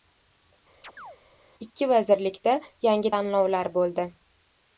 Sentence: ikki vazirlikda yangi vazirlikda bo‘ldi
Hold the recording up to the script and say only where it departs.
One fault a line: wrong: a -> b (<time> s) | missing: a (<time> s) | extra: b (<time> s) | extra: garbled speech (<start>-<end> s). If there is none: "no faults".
wrong: vazirlikda -> tayinlovlar (3.1 s)